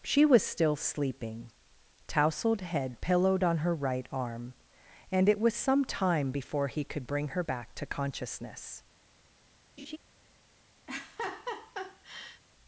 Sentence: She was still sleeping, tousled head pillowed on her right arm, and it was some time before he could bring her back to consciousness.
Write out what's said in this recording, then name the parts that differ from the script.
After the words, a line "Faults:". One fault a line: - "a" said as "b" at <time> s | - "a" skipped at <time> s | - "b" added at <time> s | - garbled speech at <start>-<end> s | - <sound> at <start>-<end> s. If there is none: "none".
She was still sleeping, tousled head pillowed on her right arm, and it was some time before he could bring her back to consciousness.
Faults:
- laugh at 9.8-10.0 s
- laugh at 10.9-12.4 s